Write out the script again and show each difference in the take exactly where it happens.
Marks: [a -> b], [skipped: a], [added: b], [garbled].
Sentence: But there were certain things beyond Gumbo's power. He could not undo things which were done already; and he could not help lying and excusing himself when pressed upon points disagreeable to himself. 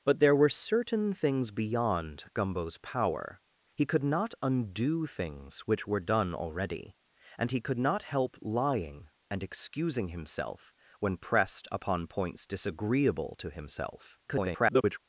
But there were certain things beyond Gumbo's power. He could not undo things which were done already; and he could not help lying and excusing himself when pressed upon points disagreeable to himself. [garbled]